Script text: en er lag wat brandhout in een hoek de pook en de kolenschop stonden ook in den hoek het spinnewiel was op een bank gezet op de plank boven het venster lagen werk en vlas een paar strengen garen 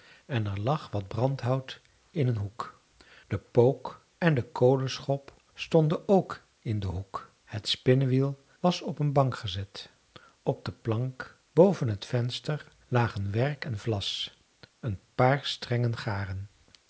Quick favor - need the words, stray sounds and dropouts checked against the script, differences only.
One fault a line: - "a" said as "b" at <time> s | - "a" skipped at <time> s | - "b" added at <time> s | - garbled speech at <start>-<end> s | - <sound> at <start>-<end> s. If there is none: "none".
none